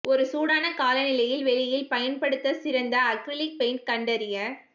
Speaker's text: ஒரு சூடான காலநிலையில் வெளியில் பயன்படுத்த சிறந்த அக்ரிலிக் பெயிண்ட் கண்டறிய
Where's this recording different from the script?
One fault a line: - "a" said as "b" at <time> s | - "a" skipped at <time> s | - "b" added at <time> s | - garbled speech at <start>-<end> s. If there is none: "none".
none